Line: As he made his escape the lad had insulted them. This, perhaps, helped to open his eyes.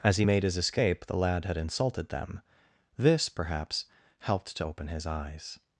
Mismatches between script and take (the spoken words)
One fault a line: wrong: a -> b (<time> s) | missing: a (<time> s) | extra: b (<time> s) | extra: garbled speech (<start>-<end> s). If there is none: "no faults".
no faults